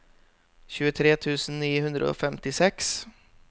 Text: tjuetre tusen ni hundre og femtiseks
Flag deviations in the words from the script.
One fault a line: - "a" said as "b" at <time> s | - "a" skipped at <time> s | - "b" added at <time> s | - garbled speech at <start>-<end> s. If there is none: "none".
none